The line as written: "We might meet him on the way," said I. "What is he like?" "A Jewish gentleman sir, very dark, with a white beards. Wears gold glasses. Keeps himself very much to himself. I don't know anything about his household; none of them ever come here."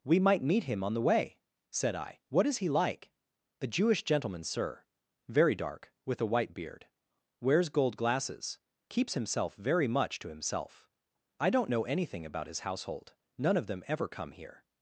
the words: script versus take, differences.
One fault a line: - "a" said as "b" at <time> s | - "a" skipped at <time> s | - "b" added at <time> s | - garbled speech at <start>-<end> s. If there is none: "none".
- "beards" said as "beard" at 6.5 s